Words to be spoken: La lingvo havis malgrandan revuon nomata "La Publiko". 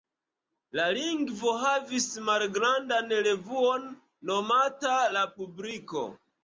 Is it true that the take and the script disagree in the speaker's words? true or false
false